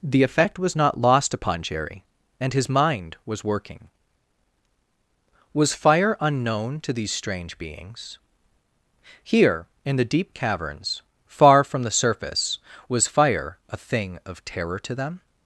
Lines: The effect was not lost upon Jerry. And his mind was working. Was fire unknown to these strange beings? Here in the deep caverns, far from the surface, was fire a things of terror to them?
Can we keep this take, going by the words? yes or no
no